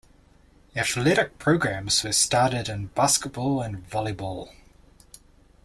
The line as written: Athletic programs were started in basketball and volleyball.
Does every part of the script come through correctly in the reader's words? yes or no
yes